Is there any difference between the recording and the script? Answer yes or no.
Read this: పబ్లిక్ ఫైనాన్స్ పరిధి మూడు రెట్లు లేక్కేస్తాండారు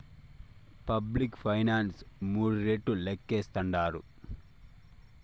yes